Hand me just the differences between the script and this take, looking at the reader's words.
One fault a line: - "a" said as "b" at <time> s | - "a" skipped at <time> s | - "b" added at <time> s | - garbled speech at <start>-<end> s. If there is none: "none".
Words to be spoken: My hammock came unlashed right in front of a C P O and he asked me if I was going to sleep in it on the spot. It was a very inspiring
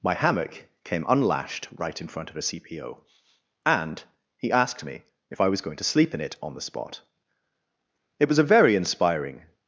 none